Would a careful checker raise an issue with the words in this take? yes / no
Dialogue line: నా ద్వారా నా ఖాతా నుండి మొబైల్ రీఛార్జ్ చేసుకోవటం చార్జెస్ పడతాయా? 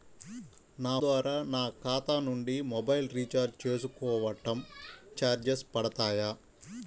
no